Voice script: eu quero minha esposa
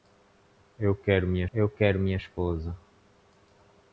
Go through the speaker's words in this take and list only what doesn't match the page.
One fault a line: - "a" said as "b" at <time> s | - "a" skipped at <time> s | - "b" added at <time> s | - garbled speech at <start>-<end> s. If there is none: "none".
- "eu quero minha" added at 1.5 s